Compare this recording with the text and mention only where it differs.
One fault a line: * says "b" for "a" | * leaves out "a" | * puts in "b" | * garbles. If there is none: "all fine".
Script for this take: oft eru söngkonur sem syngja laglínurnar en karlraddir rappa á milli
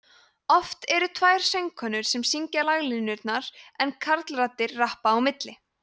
* puts in "tvær"